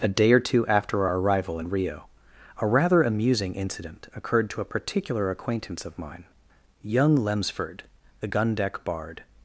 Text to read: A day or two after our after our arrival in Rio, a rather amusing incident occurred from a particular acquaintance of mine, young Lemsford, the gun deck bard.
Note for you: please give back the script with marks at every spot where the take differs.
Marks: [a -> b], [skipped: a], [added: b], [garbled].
A day or two after our [skipped: after our] arrival in Rio, a rather amusing incident occurred [from -> to] a particular acquaintance of mine, young Lemsford, the gun deck bard.